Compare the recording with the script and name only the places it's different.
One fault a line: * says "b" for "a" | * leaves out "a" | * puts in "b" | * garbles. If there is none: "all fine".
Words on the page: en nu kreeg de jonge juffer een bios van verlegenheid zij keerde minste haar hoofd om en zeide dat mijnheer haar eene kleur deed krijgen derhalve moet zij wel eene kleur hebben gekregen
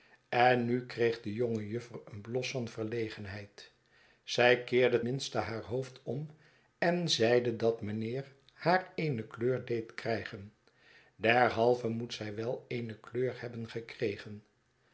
all fine